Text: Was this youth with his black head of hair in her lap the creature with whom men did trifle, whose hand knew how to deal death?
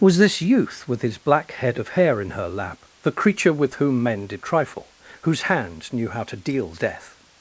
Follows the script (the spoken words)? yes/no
yes